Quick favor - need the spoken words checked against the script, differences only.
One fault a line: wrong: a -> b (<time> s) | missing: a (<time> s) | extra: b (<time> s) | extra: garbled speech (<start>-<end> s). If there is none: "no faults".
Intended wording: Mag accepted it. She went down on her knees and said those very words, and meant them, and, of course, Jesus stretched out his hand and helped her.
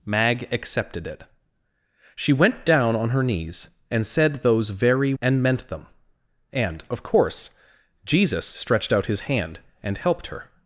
missing: words (5.1 s)